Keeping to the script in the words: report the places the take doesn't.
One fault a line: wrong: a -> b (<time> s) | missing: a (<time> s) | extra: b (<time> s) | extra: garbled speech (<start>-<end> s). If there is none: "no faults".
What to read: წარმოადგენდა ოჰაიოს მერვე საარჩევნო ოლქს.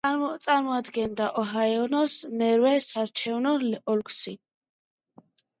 no faults